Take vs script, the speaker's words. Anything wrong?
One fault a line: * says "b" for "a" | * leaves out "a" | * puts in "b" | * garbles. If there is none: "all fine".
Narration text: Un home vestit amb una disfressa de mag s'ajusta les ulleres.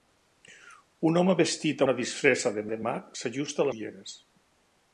* leaves out "amb"
* puts in "de"
* leaves out "les"